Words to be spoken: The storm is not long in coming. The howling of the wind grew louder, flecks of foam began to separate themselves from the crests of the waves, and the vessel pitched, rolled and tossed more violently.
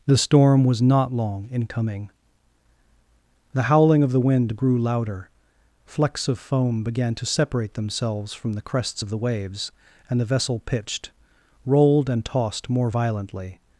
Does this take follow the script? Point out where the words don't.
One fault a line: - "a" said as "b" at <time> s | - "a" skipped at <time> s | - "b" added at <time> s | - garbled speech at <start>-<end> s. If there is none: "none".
- "is" said as "was" at 0.6 s